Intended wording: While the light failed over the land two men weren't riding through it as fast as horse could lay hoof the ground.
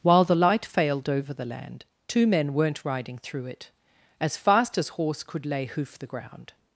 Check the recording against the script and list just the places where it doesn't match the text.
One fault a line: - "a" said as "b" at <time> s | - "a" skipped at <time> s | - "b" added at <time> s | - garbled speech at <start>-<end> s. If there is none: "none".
none